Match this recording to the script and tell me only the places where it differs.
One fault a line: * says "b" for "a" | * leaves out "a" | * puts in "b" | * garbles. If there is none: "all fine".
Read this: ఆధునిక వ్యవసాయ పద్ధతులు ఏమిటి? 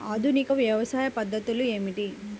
all fine